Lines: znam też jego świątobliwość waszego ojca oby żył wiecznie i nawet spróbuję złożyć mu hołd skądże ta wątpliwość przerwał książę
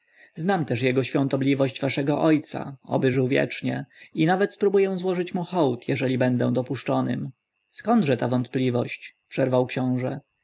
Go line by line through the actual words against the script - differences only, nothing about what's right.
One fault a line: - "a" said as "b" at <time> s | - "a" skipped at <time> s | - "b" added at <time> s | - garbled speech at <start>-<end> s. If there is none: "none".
- "jeżeli będę dopuszczonym" added at 5.9 s